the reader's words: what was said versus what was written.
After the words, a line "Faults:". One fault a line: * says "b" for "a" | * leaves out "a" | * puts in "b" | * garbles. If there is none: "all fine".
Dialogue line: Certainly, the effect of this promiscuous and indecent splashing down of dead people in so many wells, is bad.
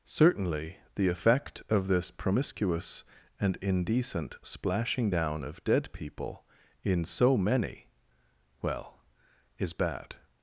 Certainly, the effect of this promiscuous and indecent splashing down of dead people in so many well, is bad.
Faults:
* says "well" for "wells"